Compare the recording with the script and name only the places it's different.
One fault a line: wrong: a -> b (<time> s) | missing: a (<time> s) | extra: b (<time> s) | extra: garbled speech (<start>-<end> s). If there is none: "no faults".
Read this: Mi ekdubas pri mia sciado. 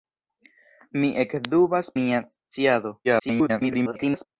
missing: pri (1.9 s)
extra: garbled speech (3.0-4.3 s)